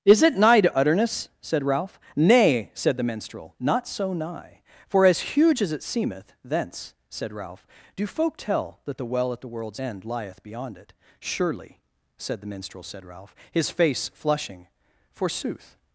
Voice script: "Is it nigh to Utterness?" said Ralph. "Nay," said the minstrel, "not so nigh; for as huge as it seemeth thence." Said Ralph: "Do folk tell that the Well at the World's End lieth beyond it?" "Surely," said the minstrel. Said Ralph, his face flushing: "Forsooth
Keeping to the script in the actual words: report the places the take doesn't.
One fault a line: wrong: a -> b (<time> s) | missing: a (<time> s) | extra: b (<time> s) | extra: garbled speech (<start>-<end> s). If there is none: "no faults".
no faults